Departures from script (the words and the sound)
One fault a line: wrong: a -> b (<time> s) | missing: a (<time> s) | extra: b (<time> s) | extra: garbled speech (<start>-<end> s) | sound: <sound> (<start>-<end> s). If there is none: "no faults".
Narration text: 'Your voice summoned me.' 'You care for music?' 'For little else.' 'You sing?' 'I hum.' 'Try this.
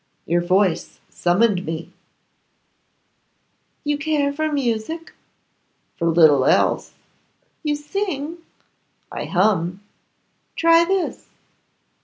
no faults